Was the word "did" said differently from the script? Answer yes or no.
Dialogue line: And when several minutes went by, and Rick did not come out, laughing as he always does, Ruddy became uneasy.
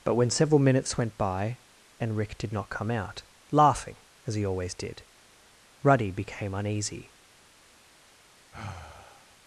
no